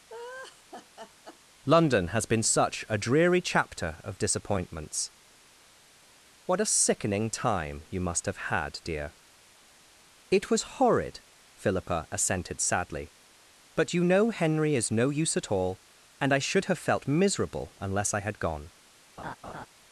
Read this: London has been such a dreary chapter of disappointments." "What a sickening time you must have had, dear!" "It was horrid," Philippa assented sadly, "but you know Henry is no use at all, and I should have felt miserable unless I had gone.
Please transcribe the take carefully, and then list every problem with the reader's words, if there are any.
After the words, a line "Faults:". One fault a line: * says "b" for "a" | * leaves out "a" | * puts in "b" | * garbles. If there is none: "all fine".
London has been such a dreary chapter of disappointments." "What a sickening time you must have had, dear!" "It was horrid," Philippa assented sadly, "but you know Henry is no use at all, and I should have felt miserable unless I had gone.
Faults:
all fine